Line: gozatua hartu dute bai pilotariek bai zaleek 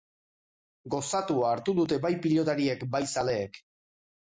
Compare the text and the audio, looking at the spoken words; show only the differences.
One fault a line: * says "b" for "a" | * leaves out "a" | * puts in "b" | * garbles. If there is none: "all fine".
all fine